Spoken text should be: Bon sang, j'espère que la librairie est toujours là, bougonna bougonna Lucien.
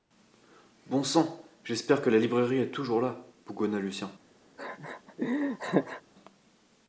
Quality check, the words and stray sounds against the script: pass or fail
fail